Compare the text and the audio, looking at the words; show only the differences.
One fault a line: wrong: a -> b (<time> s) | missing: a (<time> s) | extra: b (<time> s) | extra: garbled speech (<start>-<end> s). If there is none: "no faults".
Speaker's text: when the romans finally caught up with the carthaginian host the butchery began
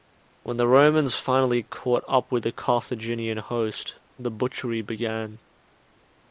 no faults